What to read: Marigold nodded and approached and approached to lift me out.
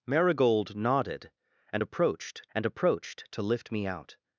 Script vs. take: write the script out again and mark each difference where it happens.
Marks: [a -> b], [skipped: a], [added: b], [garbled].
Marigold nodded and approached and approached to lift me out.